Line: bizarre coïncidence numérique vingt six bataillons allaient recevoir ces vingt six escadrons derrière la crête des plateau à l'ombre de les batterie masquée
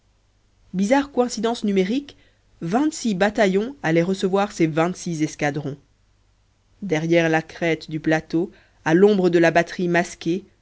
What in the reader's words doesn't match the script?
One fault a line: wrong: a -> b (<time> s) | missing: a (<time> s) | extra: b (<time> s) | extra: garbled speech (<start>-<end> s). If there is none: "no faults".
wrong: des -> du (7.9 s)
wrong: les -> la (9.4 s)